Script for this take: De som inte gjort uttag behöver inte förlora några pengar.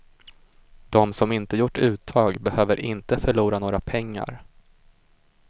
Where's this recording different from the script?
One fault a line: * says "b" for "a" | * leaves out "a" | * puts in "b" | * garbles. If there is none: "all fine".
all fine